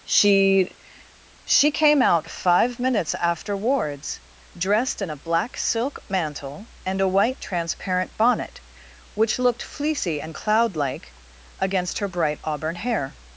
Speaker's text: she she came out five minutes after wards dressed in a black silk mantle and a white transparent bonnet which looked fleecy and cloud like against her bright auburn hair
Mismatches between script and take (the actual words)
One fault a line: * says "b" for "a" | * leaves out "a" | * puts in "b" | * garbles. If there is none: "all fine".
all fine